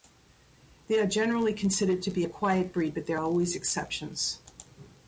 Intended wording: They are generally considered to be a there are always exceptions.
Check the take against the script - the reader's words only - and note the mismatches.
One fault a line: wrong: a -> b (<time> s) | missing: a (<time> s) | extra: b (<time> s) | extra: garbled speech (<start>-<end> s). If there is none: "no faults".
extra: quiet breed but (2.3 s)